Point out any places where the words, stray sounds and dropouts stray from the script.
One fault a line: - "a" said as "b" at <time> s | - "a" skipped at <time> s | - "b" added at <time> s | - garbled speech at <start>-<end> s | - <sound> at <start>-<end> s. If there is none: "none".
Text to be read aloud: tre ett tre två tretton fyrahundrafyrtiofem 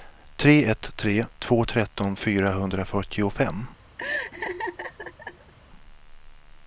- laugh at 4.0-5.5 s